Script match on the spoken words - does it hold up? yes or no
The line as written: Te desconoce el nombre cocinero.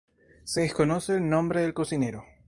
no